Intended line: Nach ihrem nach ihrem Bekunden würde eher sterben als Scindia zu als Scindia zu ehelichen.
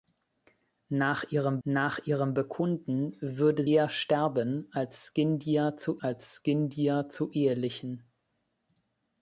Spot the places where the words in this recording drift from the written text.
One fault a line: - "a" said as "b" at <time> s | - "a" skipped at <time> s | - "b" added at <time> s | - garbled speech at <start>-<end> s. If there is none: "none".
none